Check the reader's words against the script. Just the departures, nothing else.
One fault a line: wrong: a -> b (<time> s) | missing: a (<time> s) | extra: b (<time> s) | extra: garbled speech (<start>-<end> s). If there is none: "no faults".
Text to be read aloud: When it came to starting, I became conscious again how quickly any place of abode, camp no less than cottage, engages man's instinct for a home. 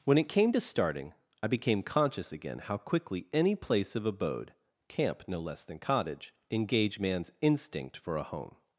wrong: engages -> engage (6.5 s)